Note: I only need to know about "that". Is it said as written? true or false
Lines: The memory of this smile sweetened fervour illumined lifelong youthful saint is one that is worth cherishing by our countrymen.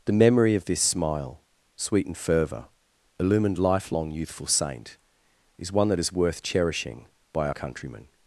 true